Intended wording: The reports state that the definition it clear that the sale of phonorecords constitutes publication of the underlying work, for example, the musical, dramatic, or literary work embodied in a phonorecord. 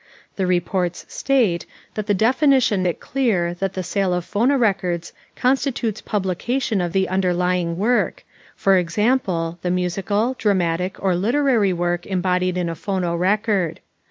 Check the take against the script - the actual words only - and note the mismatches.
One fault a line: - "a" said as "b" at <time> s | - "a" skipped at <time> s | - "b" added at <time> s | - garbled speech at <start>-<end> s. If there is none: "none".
none